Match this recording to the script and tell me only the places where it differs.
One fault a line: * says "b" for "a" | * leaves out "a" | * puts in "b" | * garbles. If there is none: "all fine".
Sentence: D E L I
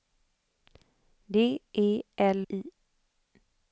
all fine